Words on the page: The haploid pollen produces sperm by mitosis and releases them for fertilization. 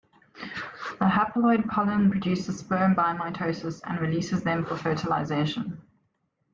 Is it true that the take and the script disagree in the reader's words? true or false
false